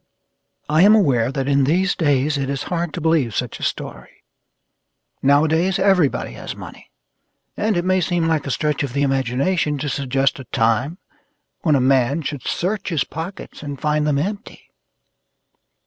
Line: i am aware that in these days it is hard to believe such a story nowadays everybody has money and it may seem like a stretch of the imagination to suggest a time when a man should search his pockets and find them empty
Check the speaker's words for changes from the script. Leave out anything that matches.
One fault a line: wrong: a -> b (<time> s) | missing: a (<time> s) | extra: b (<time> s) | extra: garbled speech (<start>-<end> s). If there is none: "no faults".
no faults